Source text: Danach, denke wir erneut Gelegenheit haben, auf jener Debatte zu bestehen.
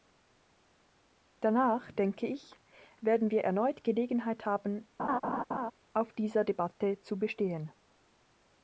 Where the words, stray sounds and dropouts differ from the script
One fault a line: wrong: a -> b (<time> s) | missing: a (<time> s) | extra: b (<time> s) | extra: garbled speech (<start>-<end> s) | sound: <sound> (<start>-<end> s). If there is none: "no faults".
extra: ich werden (2.2 s)
sound: laugh (5.0-5.7 s)
wrong: jener -> dieser (6.1 s)